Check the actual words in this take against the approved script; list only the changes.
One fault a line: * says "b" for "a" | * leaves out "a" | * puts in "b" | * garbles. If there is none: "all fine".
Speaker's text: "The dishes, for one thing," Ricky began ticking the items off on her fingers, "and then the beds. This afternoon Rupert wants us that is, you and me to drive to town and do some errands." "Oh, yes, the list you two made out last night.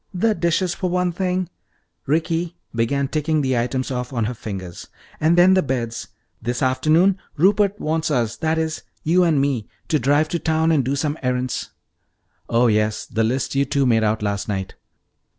all fine